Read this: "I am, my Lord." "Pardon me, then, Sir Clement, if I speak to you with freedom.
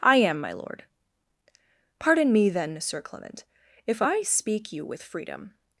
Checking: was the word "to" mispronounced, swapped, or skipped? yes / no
yes